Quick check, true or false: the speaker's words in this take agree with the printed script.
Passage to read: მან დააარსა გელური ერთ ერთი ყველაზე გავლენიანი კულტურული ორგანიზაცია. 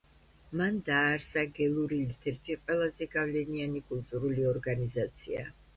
true